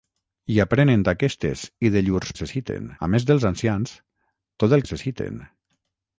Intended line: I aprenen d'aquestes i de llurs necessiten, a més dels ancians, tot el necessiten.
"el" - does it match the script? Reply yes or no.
yes